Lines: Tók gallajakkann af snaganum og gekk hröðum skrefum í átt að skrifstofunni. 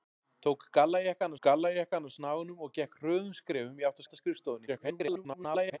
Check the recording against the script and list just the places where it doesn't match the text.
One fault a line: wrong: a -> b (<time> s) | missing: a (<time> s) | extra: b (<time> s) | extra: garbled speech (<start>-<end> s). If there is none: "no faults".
extra: gallajakkann (1.5 s)
extra: átt (4.0 s)
extra: garbled speech (4.7-5.8 s)